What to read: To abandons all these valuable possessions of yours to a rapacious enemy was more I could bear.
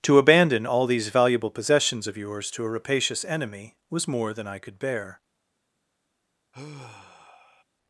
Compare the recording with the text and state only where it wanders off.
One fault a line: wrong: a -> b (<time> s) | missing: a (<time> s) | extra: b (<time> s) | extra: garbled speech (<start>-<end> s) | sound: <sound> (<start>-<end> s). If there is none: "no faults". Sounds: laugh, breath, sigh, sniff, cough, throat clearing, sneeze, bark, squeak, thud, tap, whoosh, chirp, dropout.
wrong: abandons -> abandon (0.2 s)
extra: than (4.3 s)
sound: sigh (6.5-7.6 s)